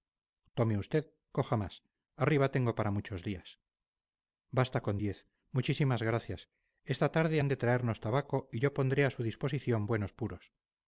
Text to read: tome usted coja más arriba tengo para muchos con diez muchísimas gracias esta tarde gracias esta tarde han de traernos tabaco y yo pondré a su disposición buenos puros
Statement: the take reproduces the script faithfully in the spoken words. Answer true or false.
false